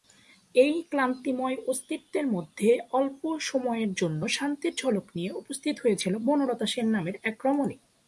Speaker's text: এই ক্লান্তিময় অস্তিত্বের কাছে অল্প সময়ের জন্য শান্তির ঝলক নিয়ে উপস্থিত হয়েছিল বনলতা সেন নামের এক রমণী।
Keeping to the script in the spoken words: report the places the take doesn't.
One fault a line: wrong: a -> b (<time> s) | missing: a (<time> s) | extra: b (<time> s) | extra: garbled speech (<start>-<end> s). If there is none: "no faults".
wrong: কাছে -> মধ্যে (2.3 s)